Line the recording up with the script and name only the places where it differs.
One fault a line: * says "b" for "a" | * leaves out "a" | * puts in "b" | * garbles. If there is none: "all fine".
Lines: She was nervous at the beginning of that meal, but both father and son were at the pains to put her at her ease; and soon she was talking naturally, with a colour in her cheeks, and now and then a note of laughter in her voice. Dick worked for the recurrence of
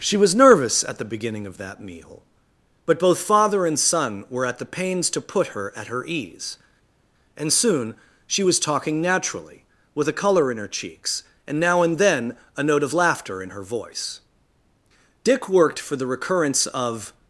all fine